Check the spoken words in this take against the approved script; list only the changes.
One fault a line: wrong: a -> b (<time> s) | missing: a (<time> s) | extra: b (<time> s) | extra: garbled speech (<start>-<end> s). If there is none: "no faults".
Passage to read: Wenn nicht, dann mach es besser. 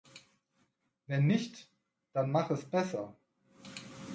no faults